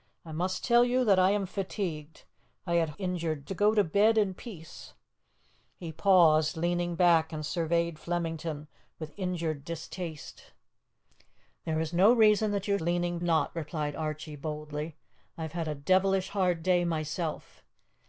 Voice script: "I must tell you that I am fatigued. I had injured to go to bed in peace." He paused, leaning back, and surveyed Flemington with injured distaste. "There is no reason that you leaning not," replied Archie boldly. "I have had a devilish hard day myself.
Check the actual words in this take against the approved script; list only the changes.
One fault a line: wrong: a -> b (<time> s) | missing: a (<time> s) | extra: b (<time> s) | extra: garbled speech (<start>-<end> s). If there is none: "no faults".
no faults